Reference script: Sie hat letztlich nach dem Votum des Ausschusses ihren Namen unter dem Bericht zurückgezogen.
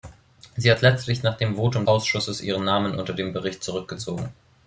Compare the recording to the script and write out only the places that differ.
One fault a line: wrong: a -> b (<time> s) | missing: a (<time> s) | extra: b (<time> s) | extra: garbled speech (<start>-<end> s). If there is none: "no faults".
missing: des (1.8 s)